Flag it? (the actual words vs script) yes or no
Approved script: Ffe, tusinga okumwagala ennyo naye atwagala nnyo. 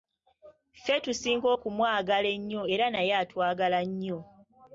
yes